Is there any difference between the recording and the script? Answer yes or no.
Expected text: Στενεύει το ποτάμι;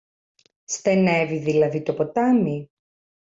yes